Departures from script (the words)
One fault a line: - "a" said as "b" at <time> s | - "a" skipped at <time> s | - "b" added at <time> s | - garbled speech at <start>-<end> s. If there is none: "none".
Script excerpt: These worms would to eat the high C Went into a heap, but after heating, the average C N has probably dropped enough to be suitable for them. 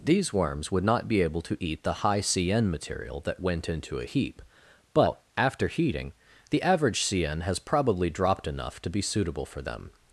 - "not be able" added at 0.8 s
- "N material that" added at 2.5 s